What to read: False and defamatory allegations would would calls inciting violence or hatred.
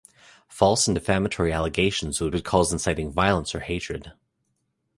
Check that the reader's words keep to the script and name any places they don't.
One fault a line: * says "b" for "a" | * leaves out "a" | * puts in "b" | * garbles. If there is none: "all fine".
all fine